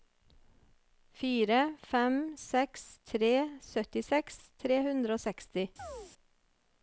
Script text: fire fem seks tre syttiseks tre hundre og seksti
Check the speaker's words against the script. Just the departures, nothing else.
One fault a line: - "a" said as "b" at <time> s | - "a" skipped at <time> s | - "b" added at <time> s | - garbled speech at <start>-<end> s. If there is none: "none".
none